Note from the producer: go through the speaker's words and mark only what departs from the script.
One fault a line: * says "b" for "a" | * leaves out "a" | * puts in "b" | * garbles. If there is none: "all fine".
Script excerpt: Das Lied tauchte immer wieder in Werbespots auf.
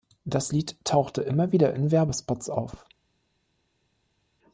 all fine